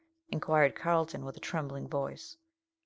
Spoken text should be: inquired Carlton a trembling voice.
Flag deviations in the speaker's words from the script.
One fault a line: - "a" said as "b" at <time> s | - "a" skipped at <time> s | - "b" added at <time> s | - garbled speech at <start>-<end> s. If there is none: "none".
- "with" added at 1.2 s